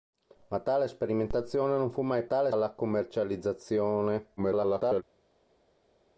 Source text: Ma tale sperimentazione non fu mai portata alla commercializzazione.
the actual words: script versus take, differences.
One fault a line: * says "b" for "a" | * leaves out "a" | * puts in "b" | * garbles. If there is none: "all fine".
* says "tale" for "portata"
* garbles